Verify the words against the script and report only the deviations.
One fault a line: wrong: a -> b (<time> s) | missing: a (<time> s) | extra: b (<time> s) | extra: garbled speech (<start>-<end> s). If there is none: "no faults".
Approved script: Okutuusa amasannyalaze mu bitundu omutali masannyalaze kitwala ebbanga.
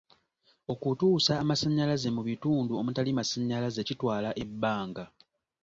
no faults